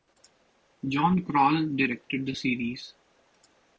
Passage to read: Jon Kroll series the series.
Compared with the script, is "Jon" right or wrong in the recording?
right